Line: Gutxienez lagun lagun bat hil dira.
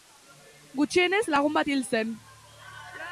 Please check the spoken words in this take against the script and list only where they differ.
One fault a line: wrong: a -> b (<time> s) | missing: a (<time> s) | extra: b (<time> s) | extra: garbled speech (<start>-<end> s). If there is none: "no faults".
missing: lagun (1.6 s)
wrong: dira -> zen (1.9 s)